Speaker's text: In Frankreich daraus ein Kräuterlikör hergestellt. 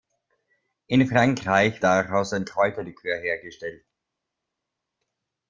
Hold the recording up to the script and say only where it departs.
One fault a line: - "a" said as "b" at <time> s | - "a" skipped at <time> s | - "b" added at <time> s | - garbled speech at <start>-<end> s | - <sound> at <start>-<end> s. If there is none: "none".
none